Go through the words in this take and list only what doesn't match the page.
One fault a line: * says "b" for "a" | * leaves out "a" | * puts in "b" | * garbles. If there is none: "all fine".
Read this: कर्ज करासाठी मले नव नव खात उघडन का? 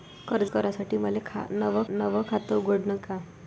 all fine